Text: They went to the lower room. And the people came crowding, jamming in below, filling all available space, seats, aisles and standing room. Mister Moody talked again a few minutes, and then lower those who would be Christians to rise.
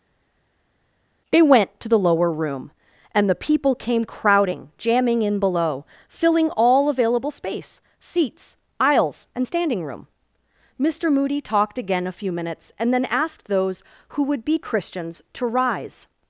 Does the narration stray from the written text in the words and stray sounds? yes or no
yes